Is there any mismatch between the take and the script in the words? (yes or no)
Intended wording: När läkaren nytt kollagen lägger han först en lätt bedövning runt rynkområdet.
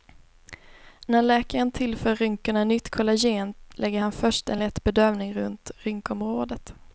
yes